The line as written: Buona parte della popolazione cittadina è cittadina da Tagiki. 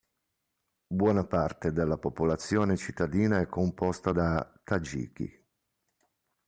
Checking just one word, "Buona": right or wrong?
right